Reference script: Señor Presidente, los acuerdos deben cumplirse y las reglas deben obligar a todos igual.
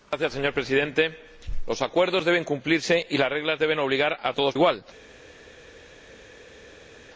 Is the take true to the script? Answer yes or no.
yes